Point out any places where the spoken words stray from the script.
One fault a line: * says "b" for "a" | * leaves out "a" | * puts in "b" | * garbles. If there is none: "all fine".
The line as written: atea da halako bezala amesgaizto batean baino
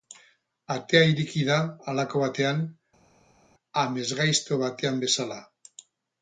* puts in "ireki"
* says "batean" for "bezala"
* says "bezala" for "baino"